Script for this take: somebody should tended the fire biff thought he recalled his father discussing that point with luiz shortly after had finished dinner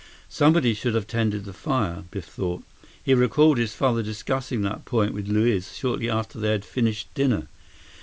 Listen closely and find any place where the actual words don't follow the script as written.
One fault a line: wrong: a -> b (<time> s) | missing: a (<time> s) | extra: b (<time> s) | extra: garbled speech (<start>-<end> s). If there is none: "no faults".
extra: have (0.9 s)
extra: they (6.4 s)